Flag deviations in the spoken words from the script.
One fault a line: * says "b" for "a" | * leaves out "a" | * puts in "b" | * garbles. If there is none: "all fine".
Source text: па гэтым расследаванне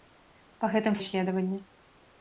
all fine